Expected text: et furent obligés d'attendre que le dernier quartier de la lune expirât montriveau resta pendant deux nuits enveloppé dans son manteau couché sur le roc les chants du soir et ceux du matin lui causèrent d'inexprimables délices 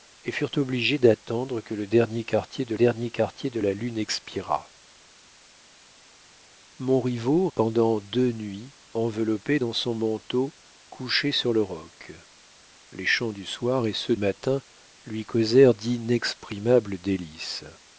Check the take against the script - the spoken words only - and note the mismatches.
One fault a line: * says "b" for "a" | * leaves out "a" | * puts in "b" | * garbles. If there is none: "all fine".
* puts in "dernier quartier de"
* leaves out "resta"
* leaves out "du"